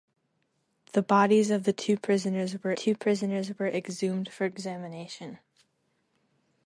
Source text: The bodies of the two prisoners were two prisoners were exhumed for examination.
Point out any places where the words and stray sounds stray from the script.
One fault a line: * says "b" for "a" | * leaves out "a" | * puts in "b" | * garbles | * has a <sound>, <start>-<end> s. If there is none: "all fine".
all fine